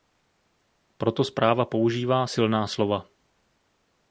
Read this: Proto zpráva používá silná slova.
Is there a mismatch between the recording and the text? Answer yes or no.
no